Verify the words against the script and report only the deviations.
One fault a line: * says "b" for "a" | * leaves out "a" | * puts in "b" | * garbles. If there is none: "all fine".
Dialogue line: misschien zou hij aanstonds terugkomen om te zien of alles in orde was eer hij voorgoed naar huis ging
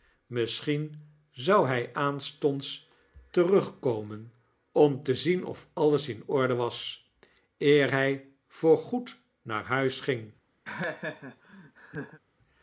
all fine